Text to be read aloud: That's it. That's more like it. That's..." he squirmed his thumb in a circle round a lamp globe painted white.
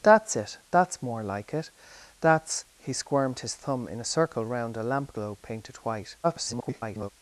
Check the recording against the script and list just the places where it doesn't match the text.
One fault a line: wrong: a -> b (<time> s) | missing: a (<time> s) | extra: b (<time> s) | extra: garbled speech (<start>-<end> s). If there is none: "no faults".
extra: garbled speech (6.2-7.1 s)